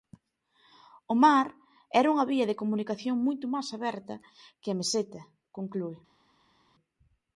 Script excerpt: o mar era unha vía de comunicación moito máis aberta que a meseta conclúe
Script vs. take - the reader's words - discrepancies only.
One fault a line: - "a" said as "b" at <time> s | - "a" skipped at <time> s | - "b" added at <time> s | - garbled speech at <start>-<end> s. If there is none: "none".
none